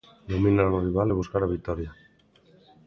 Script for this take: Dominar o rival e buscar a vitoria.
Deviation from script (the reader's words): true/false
false